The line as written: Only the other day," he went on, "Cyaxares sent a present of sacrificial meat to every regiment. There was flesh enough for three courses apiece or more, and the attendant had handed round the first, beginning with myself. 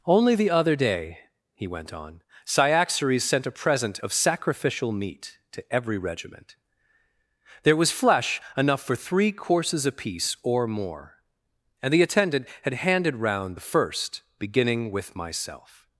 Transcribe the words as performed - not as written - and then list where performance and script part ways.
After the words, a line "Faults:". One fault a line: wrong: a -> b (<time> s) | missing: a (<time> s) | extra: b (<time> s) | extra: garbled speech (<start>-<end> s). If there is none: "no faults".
Only the other day," he went on, "Cyaxares sent a present of sacrificial meat to every regiment. There was flesh enough for three courses apiece or more, and the attendant had handed round the first, beginning with myself.
Faults:
no faults